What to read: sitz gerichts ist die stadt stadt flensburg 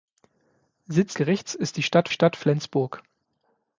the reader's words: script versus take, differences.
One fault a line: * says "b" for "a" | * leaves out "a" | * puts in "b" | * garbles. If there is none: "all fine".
all fine